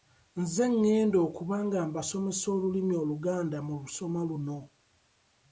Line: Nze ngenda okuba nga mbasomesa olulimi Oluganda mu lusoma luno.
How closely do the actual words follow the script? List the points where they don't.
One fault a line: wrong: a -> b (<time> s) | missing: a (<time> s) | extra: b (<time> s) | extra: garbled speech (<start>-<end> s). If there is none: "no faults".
no faults